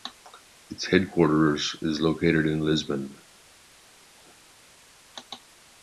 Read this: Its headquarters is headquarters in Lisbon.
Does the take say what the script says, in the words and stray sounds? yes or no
no